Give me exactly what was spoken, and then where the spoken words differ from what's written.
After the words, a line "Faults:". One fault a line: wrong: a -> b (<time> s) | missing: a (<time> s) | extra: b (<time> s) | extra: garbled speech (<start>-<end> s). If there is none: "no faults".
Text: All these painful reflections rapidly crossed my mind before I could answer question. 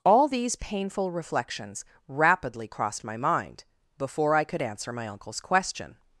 All these painful reflections rapidly crossed my mind before I could answer my uncle's question.
Faults:
extra: my uncle's (4.9 s)